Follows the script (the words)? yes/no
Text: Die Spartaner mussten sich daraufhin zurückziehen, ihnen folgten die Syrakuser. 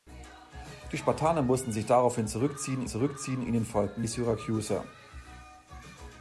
no